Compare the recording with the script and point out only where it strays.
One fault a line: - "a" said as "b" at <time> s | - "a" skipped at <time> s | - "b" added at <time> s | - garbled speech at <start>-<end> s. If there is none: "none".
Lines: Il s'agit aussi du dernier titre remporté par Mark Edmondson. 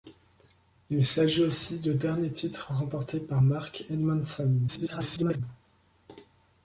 - garbled speech at 4.7-5.4 s